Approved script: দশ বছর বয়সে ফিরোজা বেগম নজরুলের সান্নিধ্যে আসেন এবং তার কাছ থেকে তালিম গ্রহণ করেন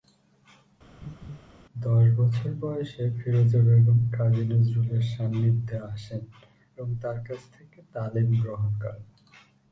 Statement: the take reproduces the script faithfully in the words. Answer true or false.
false